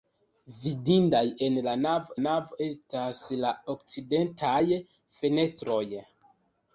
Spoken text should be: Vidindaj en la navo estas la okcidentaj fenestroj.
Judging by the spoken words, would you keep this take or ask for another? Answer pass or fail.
fail